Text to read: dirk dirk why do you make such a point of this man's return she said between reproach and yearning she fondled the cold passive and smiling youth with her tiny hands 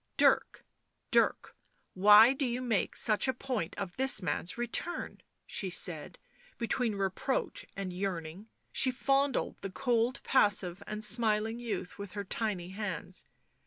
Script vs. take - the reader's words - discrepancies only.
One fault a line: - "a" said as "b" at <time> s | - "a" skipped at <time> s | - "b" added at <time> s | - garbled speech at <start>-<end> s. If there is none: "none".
none